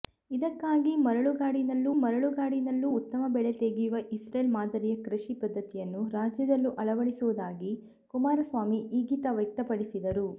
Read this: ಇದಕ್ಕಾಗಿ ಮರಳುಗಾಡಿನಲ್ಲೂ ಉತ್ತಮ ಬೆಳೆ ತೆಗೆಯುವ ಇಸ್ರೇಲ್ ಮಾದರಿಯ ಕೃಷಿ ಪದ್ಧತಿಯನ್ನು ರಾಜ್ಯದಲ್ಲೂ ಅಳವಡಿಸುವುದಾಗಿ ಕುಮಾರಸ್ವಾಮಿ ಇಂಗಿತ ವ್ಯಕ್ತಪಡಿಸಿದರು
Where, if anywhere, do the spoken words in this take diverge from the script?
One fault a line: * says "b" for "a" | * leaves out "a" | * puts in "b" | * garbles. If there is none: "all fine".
* puts in "ಮರಳುಗಾಡಿನಲ್ಲೂ"